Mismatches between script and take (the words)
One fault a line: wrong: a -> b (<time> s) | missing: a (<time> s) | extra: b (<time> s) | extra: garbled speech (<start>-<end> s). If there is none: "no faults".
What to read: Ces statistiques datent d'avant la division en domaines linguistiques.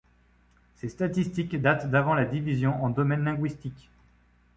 no faults